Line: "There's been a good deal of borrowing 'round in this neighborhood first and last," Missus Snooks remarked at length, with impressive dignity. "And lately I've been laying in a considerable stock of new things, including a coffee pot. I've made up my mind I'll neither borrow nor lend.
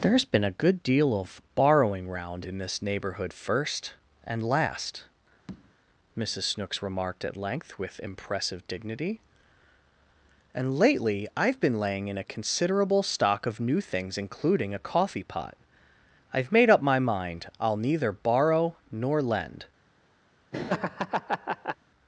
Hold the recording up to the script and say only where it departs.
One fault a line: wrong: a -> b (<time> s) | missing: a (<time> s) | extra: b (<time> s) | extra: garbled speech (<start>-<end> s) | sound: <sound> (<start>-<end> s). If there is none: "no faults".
sound: tap (5.5-5.7 s)
sound: laugh (20.5-21.8 s)